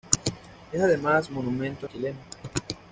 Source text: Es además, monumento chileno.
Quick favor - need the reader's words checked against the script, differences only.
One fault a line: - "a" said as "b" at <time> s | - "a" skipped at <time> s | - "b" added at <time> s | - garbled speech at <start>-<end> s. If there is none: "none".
none